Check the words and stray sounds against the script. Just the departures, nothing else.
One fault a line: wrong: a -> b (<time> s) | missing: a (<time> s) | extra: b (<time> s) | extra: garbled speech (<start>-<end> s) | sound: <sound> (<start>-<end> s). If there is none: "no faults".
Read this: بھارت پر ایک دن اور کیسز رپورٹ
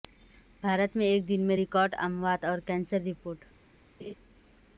wrong: پر -> میں (0.9 s)
extra: میں ریکارڈ اموات (1.5 s)
sound: laugh (4.0-4.1 s)